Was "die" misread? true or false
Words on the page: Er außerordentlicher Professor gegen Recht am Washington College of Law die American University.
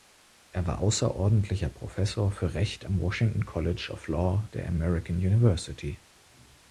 true